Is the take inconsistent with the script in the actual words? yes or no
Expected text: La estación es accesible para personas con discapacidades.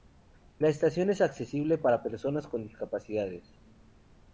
no